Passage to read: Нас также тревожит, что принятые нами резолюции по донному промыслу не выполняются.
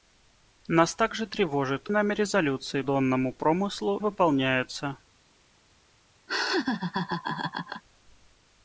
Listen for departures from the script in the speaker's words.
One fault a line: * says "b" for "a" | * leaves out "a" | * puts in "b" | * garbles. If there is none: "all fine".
* leaves out "что принятые"
* leaves out "по"
* leaves out "не"